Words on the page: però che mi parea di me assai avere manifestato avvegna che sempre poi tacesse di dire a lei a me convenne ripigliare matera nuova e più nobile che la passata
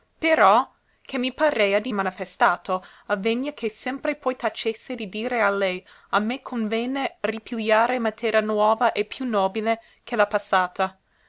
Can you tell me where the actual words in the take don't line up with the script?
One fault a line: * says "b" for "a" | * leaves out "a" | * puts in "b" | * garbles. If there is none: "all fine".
* leaves out "me assai avere"